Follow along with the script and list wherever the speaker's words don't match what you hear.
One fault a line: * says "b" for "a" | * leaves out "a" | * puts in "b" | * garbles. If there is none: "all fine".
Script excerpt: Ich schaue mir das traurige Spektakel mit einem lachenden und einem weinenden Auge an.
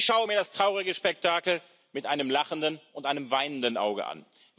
all fine